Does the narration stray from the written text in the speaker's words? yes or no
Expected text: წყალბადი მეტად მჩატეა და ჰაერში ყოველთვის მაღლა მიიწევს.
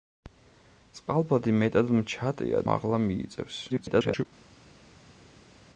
yes